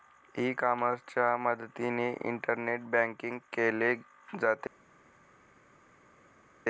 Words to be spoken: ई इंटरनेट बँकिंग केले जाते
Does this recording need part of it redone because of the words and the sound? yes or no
yes